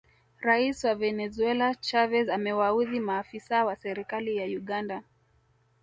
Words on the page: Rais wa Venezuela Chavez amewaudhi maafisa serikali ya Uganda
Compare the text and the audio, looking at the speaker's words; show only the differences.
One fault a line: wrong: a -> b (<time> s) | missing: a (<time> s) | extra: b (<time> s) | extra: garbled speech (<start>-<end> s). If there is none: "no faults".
extra: wa (3.6 s)